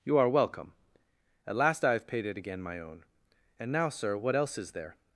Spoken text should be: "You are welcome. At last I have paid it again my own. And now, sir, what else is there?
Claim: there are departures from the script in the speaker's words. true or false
false